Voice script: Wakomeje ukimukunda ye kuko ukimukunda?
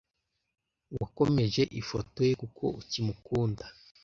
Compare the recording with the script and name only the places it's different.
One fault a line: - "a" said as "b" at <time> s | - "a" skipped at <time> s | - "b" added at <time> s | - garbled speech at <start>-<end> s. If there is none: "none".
- "ukimukunda" said as "ifoto" at 1.8 s